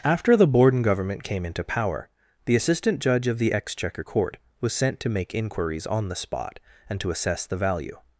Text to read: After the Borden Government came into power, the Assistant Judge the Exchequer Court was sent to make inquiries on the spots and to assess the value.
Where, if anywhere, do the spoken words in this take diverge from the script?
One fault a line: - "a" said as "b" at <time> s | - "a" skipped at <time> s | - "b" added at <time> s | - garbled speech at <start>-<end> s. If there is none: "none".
- "of" added at 3.3 s
- "spots" said as "spot" at 6.2 s